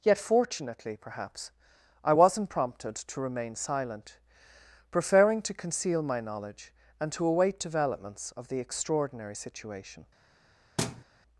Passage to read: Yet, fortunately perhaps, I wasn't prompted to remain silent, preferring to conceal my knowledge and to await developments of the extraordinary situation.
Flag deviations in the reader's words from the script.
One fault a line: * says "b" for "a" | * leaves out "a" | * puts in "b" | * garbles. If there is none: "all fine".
all fine